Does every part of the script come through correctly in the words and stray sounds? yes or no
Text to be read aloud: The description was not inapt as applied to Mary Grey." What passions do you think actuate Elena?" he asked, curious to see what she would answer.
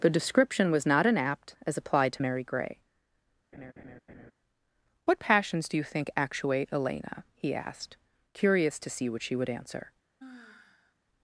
no